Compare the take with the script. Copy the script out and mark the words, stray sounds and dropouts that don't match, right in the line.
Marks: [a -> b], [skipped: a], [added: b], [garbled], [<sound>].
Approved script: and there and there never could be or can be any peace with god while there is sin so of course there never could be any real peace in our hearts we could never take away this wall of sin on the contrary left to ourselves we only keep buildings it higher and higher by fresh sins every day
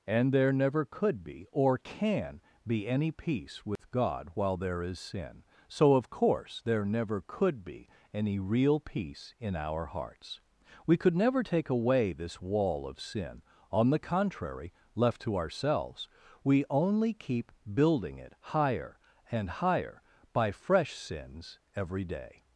and there [skipped: and there] never could be or can be any peace with [dropout] god while there is sin so of course there never could be any real peace in our hearts we could never take away this wall of sin on the contrary left to ourselves we only keep [buildings -> building] it higher and higher by fresh sins every day